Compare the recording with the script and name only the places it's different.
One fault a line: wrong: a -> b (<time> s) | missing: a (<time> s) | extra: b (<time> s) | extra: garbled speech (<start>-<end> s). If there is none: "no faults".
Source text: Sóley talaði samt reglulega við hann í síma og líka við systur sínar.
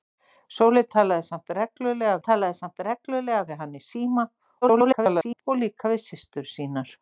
extra: talaði samt reglulega (2.3 s)
extra: garbled speech (4.6-5.4 s)